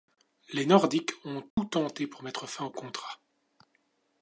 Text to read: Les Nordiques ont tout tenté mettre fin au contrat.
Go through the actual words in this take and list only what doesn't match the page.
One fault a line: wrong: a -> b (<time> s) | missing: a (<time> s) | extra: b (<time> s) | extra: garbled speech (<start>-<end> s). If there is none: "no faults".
extra: pour (2.1 s)